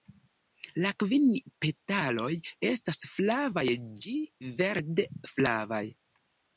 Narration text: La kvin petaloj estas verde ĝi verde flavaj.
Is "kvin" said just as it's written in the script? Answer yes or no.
yes